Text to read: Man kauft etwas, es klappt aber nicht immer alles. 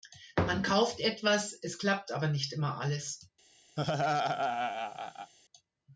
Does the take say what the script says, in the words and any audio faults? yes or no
no